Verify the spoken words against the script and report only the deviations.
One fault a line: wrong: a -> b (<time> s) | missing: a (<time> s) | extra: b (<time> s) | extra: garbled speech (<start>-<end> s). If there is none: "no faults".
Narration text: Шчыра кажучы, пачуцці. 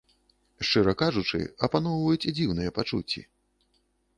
extra: апаноўваюць дзіўныя (1.7 s)